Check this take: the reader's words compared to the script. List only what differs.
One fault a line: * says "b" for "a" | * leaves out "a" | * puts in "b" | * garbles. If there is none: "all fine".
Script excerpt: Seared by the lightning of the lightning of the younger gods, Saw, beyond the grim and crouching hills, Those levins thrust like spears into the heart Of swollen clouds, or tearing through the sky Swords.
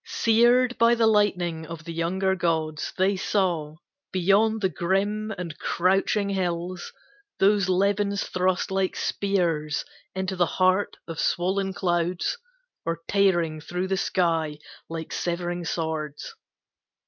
* leaves out "lightning of the"
* puts in "They"
* puts in "Like severing"